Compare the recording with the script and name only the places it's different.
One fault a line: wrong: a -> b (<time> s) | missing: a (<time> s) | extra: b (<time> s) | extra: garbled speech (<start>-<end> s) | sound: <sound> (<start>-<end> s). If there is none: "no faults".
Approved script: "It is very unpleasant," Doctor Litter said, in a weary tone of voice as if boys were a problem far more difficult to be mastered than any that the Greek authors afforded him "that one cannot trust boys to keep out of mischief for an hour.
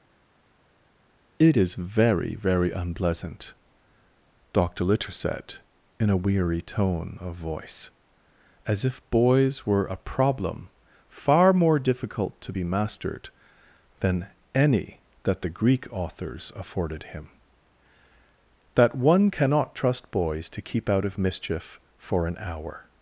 extra: very (2.3 s)